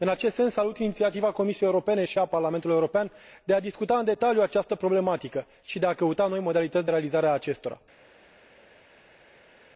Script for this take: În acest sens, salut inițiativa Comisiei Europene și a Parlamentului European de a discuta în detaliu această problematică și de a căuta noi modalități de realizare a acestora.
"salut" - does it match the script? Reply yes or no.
yes